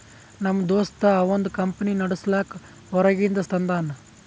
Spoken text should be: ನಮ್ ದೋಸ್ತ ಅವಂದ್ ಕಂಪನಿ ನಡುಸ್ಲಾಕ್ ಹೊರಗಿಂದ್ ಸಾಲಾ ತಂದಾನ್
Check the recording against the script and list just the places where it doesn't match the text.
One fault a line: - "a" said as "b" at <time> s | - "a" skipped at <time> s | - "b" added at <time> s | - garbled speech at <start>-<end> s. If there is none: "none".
- "ಸಾಲಾ" skipped at 3.4 s